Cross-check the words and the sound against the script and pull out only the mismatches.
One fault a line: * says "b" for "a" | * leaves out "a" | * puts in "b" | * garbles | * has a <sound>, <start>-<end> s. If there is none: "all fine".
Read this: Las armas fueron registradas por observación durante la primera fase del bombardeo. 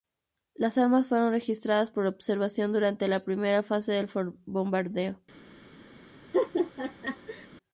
* has a laugh, 6.3-7.5 s